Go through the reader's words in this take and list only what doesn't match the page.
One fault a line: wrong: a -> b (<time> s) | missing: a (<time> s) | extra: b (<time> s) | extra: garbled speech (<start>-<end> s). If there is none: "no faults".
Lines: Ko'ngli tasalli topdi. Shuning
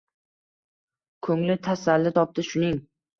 no faults